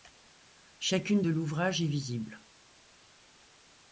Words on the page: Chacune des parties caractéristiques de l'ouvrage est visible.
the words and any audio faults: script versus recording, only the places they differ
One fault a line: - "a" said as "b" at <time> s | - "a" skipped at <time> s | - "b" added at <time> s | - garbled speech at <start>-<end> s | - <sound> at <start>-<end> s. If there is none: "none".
- "des parties caractéristiques" skipped at 1.2 s